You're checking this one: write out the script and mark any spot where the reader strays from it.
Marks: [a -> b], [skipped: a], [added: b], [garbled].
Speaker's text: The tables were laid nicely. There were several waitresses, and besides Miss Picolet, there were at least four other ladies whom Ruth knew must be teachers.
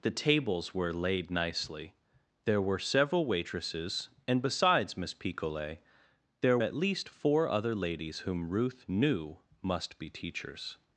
The tables were laid nicely. There were several waitresses, and besides Miss Picolet, there [skipped: were] at least four other ladies whom Ruth knew must be teachers.